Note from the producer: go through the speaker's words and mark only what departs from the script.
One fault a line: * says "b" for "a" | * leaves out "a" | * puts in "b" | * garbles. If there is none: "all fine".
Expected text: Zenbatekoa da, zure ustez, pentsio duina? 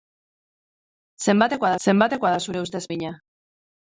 * puts in "zenbatekoa"
* leaves out "pentsio"